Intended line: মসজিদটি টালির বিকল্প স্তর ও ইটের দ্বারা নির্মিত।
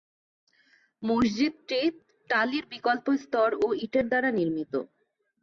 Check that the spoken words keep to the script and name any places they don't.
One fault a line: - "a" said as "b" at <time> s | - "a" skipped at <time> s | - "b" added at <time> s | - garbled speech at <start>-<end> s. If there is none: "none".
none